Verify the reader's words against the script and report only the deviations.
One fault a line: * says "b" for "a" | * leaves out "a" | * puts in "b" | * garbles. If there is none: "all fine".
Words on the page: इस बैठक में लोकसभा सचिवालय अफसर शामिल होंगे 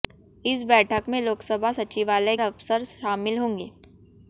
all fine